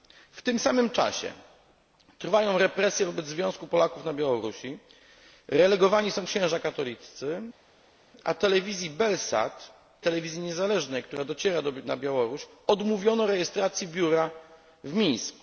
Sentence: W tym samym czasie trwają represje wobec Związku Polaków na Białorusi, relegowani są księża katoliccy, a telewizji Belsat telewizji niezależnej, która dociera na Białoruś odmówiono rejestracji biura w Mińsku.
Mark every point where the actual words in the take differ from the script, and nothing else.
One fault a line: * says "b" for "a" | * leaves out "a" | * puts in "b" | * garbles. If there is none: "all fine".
all fine